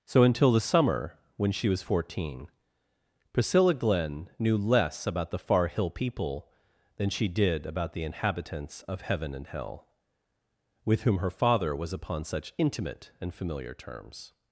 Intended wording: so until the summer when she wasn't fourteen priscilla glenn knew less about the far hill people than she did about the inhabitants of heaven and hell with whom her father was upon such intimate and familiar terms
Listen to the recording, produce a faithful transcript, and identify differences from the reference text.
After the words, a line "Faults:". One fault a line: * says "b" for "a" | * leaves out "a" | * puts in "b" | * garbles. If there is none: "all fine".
so until the summer when she was fourteen priscilla glenn knew less about the far hill people than she did about the inhabitants of heaven and hell with whom her father was upon such intimate and familiar terms
Faults:
* says "was" for "wasn't"